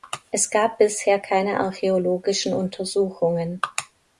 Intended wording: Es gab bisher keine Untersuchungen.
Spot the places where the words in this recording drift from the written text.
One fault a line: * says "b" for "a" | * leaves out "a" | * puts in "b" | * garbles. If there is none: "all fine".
* puts in "archäologischen"